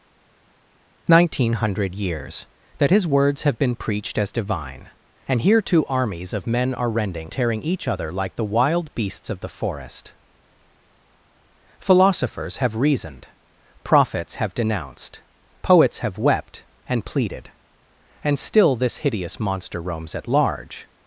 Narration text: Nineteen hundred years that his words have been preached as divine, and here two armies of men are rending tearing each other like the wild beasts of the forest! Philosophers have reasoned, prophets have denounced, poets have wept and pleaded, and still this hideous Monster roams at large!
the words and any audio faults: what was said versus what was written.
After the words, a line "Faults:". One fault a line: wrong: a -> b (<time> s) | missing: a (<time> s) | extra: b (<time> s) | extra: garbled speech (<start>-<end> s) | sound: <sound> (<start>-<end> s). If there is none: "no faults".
Nineteen hundred years that his words have been preached as divine, and here two armies of men are rending tearing each other like the wild beasts of the forest! Philosophers have reasoned, prophets have denounced, poets have wept and pleaded, and still this hideous Monster roams at large!
Faults:
no faults